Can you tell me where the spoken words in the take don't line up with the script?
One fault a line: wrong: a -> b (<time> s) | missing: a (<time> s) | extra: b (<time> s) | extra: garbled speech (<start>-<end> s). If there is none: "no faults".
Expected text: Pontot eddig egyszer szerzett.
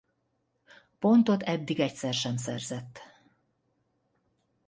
extra: sem (2.1 s)